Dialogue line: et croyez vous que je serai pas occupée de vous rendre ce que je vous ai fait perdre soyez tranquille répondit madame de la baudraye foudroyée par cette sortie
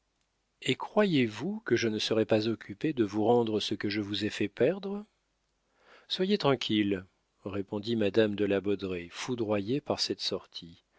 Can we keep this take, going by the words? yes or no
no